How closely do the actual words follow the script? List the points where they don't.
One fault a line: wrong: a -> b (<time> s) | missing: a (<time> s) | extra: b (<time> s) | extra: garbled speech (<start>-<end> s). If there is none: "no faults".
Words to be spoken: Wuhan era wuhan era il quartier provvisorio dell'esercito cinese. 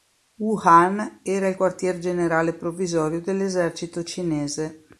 missing: wuhan era (1.5 s)
extra: generale (2.0 s)